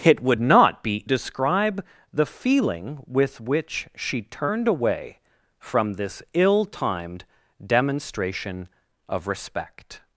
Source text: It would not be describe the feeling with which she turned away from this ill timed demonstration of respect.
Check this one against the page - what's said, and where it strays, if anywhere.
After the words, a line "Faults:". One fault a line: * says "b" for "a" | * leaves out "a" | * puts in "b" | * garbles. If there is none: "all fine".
It would not be describe the feeling with which she turned away from this ill timed demonstration of respect.
Faults:
all fine